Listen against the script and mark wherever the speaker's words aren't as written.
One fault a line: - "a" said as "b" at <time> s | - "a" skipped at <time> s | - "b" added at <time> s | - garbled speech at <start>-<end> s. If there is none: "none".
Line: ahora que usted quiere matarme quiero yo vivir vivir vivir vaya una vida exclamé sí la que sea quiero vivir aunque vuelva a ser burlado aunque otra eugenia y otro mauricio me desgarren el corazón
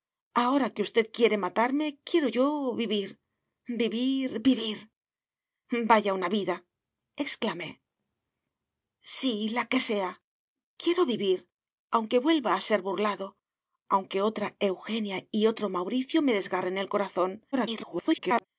- garbled speech at 17.5-18.4 s